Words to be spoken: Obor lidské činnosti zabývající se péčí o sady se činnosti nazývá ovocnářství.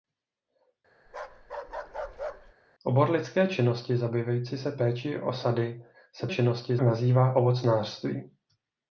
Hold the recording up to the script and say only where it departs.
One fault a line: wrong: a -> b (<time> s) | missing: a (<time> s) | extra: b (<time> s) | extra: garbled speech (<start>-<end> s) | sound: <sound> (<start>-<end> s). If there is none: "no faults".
sound: bark (1.1-2.5 s)